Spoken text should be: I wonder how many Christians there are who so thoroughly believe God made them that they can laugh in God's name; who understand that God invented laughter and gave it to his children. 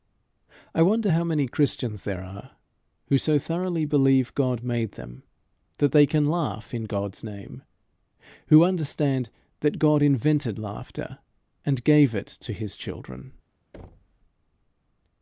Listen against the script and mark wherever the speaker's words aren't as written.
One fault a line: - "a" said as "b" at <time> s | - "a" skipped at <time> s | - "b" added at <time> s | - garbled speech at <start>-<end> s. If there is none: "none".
none